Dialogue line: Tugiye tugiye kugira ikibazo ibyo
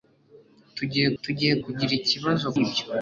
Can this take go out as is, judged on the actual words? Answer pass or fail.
pass